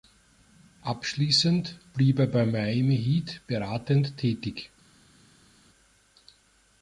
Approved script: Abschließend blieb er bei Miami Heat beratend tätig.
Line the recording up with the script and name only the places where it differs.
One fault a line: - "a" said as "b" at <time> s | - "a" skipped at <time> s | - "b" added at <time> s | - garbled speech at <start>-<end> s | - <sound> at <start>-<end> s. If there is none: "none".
none